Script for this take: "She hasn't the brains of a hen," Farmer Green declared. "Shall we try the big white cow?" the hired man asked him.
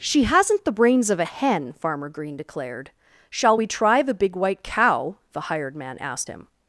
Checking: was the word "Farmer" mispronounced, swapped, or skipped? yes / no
no